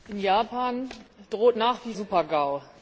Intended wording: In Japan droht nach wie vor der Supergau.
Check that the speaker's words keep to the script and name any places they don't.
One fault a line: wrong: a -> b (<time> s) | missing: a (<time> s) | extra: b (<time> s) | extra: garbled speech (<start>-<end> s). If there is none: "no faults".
missing: vor der (1.9 s)